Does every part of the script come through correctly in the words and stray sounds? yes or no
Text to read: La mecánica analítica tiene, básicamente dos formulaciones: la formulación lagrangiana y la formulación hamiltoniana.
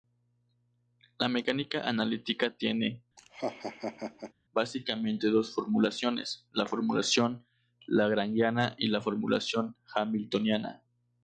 no